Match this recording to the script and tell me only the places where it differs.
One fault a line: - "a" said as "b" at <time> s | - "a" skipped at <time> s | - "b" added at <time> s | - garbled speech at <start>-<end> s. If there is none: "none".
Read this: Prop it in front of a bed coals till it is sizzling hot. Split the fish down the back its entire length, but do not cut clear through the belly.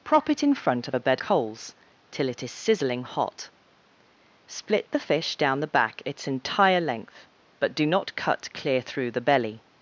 none